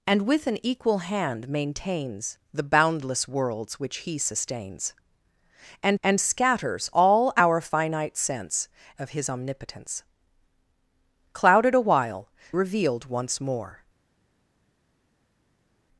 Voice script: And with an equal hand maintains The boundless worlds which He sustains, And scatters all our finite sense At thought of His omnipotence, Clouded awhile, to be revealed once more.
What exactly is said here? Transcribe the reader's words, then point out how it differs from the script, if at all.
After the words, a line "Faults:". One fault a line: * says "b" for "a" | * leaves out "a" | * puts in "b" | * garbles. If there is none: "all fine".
And with an equal hand maintains The boundless worlds which He sustains, And And scatters all our finite sense Of His omnipotence, Clouded awhile, revealed once more.
Faults:
* puts in "And"
* leaves out "At thought"
* leaves out "to be"